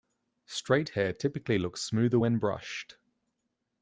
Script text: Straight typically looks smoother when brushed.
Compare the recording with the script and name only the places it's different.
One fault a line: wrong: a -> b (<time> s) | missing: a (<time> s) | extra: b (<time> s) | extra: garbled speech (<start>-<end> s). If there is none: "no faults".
extra: hair (0.9 s)